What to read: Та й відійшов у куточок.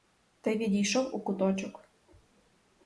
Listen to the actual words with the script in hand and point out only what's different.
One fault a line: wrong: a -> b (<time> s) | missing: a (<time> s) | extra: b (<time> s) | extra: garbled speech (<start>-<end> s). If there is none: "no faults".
no faults